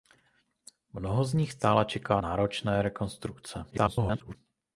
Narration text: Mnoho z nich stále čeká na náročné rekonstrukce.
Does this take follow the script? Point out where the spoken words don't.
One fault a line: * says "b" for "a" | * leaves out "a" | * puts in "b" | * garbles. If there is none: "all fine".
* leaves out "na"
* garbles